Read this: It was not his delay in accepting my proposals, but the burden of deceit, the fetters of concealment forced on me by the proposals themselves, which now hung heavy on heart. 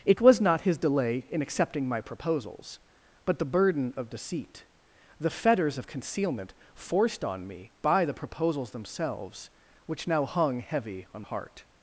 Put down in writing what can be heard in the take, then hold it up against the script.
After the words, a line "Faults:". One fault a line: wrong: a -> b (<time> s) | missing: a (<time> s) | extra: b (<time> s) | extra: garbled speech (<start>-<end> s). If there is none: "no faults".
It was not his delay in accepting my proposals, but the burden of deceit, the fetters of concealment forced on me by the proposals themselves, which now hung heavy on heart.
Faults:
no faults